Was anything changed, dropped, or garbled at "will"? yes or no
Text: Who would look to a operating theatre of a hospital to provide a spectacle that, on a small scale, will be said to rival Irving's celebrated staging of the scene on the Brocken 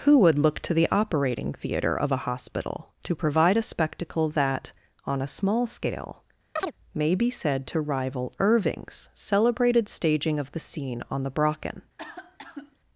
yes